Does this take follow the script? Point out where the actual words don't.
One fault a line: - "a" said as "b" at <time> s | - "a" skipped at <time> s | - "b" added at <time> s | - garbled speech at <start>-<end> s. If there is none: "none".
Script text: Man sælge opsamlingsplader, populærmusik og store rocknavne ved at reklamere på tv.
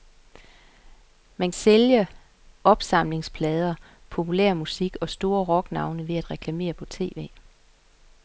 none